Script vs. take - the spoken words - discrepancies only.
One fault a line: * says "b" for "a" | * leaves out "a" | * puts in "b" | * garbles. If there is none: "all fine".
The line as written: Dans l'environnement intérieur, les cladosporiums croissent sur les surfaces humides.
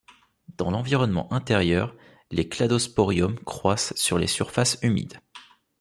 all fine